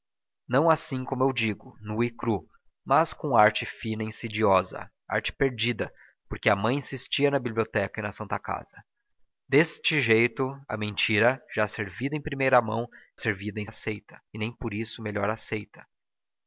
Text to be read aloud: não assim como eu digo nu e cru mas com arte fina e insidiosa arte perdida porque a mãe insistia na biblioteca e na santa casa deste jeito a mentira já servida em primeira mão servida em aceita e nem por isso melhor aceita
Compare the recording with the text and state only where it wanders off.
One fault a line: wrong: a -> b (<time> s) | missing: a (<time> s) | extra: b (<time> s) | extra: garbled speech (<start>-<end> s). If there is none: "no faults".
no faults